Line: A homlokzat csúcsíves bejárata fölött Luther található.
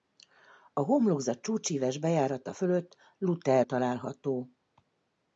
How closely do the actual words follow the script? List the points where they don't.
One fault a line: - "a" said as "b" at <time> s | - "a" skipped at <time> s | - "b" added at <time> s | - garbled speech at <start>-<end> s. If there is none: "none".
none